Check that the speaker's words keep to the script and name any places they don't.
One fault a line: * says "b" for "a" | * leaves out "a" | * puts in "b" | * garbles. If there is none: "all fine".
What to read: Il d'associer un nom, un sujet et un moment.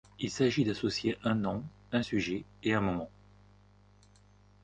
* puts in "s'agit"